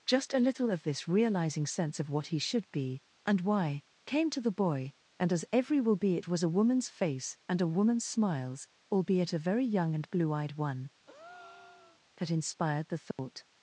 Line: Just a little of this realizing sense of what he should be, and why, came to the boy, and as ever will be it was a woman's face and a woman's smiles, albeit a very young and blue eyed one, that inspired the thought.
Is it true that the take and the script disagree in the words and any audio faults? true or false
true